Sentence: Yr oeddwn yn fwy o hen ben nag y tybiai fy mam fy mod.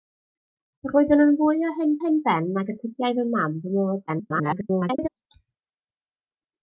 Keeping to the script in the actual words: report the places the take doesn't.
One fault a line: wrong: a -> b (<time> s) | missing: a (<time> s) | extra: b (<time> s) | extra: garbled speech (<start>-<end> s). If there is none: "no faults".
extra: hen (2.0 s)
extra: garbled speech (4.1-5.1 s)